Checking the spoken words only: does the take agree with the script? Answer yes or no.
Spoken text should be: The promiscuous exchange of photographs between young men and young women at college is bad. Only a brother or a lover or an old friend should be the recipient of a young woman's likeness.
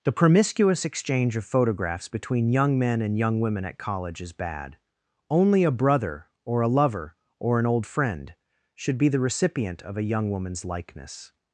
yes